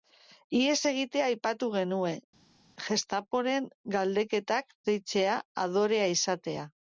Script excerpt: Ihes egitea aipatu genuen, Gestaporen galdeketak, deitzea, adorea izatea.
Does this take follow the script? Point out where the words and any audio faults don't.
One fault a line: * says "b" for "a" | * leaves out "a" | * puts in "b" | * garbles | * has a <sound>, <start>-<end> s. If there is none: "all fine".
all fine